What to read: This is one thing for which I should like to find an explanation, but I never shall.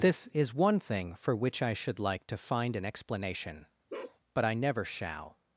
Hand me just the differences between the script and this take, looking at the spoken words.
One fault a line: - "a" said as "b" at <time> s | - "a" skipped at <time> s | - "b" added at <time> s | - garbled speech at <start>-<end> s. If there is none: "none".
none